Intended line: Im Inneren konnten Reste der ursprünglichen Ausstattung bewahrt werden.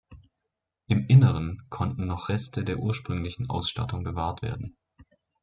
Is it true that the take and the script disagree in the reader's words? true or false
true